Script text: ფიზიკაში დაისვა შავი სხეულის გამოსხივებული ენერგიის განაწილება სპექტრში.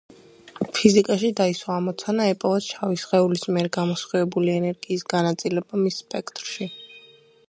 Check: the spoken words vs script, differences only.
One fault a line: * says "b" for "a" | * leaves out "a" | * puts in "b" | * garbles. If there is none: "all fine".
* puts in "ამოცანა ეპოვათ"
* puts in "მიერ"
* puts in "მის"